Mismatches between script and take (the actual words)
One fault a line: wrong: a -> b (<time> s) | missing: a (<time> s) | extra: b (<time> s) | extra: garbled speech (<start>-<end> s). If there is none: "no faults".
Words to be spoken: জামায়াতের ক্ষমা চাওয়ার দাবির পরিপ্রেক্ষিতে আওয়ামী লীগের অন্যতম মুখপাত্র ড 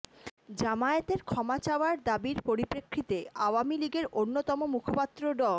no faults